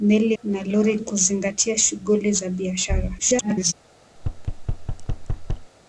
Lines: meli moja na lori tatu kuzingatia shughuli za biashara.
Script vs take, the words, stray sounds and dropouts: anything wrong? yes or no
yes